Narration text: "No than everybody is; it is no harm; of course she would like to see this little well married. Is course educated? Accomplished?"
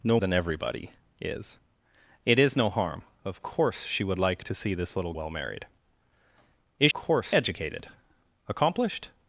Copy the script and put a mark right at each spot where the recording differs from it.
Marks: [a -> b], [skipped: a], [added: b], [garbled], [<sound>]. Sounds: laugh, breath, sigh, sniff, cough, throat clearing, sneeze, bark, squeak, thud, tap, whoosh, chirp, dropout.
"No than everybody is; it is no harm; of course she would like to see this little well married. Is course educated? Accomplished?"